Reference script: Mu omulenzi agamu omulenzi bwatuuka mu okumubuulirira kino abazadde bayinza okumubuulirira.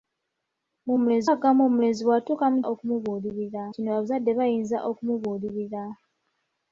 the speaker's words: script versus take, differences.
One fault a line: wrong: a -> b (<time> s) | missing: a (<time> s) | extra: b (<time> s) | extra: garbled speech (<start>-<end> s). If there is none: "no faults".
no faults